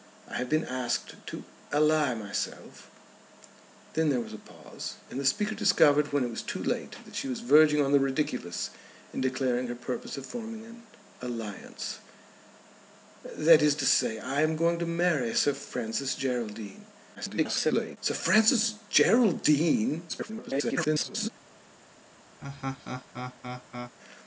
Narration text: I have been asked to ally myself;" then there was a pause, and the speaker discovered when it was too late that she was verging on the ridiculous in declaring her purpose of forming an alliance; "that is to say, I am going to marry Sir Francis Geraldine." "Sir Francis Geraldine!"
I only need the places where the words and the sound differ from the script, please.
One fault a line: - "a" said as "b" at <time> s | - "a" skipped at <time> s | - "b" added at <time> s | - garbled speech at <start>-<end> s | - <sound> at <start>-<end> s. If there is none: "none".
- garbled speech at 17.1-18.0 s
- garbled speech at 20.1-21.3 s
- laugh at 22.4-23.9 s